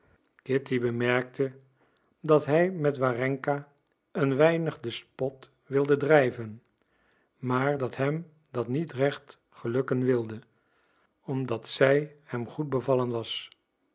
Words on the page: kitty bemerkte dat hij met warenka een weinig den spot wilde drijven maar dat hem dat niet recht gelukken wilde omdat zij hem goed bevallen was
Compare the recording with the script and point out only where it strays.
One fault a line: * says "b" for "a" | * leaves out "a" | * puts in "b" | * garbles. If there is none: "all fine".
all fine